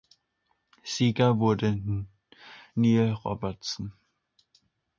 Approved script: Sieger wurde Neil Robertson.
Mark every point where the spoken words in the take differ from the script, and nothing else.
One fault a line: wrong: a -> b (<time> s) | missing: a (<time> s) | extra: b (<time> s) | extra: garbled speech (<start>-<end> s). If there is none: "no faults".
no faults